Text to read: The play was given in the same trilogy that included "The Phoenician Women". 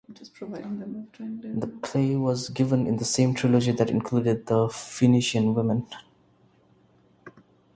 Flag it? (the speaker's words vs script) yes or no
no